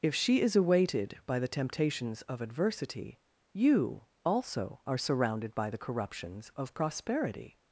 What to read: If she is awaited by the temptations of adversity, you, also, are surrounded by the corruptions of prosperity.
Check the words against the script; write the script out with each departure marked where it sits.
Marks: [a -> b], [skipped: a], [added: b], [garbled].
If she is awaited by the temptations of adversity, you, also, are surrounded by the corruptions of prosperity.